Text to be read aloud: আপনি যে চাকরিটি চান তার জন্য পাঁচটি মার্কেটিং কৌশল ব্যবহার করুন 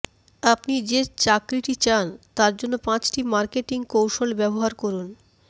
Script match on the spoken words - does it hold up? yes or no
yes